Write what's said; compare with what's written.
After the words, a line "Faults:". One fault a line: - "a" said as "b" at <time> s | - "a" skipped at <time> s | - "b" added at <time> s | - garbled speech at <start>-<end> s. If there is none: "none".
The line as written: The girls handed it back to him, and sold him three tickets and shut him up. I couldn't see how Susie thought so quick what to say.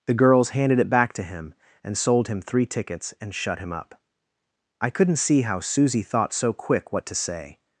The girls handed it back to him, and sold him three tickets and shut him up. I couldn't see how Susie thought so quick what to say.
Faults:
none